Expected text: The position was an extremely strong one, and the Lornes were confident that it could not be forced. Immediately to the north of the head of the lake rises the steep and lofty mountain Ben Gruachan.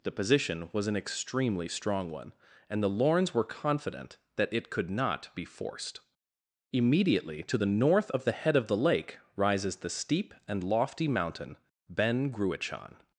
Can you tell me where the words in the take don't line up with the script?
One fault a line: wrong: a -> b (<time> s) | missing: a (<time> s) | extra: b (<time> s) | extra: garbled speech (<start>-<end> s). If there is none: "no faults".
no faults